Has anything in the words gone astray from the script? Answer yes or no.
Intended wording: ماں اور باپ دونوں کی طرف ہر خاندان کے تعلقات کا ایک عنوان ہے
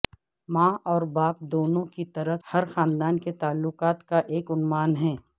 no